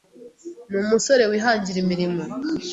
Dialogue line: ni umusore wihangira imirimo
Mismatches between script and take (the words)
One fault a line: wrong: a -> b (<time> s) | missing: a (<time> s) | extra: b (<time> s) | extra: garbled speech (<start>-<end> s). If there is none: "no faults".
no faults